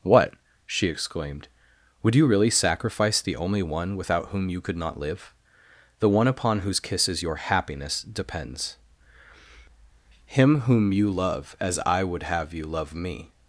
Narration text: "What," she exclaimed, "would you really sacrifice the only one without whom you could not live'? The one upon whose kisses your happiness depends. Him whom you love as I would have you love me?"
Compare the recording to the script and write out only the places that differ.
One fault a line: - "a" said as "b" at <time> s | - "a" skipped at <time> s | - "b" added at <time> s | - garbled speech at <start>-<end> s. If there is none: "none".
none